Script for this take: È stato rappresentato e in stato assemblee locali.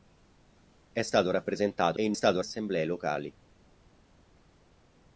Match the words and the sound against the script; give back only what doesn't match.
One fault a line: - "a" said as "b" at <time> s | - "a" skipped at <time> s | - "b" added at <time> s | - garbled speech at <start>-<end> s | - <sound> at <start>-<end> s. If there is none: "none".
none